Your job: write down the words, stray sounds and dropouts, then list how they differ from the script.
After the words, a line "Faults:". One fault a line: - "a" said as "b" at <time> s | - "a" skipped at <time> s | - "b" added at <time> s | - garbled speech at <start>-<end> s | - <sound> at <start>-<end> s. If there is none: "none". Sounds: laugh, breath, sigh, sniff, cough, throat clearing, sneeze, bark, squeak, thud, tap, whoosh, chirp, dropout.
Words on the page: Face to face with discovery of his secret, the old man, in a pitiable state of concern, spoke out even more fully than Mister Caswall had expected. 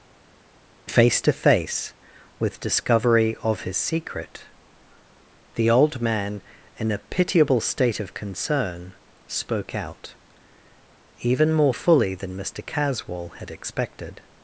Face to face with discovery of his secret, the old man, in a pitiable state of concern, spoke out even more fully than Mister Caswall had expected.
Faults:
none